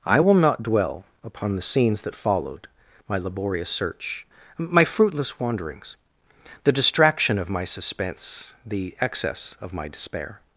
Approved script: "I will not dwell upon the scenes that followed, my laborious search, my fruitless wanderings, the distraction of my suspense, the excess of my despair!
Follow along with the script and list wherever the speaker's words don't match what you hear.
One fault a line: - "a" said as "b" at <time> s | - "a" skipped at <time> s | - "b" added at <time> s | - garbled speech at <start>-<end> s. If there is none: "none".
none